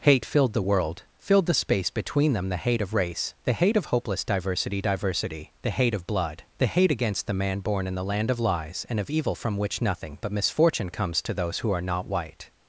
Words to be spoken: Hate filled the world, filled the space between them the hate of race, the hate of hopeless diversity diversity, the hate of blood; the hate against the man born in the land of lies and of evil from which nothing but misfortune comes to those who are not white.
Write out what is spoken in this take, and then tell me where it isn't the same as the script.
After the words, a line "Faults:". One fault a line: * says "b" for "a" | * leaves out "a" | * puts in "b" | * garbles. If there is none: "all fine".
Hate filled the world, filled the space between them the hate of race, the hate of hopeless diversity diversity, the hate of blood; the hate against the man born in the land of lies and of evil from which nothing but misfortune comes to those who are not white.
Faults:
all fine